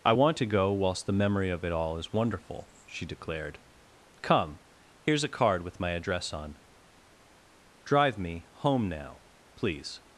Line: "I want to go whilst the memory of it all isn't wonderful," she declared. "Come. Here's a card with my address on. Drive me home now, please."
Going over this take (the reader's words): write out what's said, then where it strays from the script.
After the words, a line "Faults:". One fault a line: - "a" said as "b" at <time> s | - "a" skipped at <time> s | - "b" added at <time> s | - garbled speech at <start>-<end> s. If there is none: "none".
"I want to go whilst the memory of it all is wonderful," she declared. "Come. Here's a card with my address on. Drive me home now, please."
Faults:
- "isn't" said as "is" at 2.0 s